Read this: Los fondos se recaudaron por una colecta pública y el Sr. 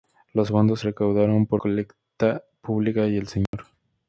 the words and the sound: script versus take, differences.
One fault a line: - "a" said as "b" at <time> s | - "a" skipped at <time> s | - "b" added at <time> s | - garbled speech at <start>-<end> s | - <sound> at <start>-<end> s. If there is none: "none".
- "se" skipped at 0.8 s
- "una" skipped at 1.6 s
- dropout at 3.5-3.5 s